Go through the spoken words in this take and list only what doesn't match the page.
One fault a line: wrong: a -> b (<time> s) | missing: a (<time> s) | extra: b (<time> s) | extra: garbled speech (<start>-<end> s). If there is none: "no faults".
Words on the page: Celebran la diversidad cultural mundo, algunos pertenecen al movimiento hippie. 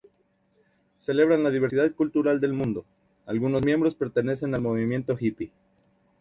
extra: del (2.4 s)
extra: miembros (3.6 s)